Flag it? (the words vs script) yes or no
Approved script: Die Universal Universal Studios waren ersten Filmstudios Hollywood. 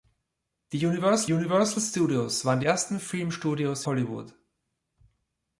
no